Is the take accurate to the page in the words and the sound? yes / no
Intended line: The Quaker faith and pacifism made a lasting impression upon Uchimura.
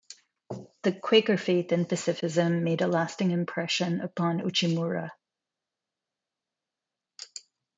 yes